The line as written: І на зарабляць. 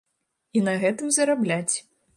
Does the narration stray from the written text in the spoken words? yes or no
yes